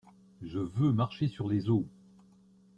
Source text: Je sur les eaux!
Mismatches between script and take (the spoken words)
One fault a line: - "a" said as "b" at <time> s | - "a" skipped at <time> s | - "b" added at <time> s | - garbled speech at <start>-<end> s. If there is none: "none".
- "veux marcher" added at 0.6 s